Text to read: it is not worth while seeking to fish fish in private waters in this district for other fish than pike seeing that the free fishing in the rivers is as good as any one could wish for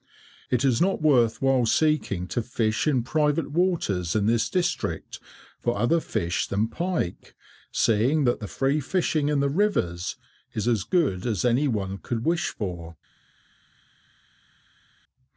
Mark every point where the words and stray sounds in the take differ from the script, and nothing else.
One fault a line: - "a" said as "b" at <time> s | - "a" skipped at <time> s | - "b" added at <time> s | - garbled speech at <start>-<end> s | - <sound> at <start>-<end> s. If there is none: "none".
- "fish" skipped at 2.9 s